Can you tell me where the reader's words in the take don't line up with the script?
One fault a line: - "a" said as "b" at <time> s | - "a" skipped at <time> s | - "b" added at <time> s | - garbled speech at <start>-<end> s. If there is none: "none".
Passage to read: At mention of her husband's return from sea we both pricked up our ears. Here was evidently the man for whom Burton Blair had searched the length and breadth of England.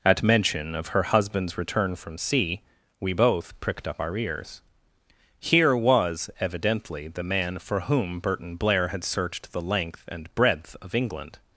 none